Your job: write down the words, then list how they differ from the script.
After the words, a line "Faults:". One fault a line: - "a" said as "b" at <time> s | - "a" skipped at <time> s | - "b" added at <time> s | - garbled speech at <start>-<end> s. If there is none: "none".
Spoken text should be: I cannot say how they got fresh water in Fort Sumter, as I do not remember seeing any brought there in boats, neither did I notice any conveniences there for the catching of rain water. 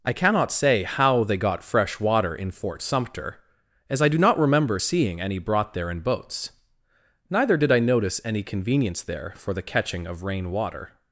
I cannot say how they got fresh water in Fort Sumter, as I do not remember seeing any brought there in boats, neither did I notice any convenience there for the catching of rain water.
Faults:
- "conveniences" said as "convenience" at 8.4 s